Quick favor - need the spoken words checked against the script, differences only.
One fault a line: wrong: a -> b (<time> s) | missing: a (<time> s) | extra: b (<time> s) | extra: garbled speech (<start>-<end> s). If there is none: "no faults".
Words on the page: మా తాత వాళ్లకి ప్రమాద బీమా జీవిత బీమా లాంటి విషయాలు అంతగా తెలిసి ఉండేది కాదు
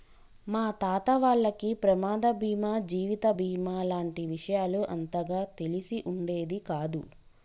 no faults